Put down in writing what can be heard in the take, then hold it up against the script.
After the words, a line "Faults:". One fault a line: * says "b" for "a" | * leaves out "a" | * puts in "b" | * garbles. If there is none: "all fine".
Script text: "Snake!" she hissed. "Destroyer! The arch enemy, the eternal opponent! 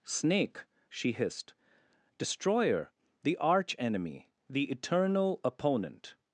"Snake!" she hissed. "Destroyer! The arch enemy, the eternal opponent!
Faults:
all fine